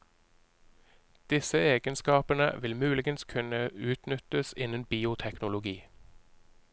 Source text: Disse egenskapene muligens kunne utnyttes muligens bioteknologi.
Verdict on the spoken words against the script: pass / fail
fail